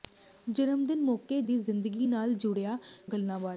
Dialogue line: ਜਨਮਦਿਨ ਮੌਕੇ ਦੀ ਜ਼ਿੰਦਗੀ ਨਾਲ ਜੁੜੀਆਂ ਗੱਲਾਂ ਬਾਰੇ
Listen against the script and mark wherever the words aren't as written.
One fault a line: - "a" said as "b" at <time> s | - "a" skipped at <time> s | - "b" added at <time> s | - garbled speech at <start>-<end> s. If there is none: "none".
none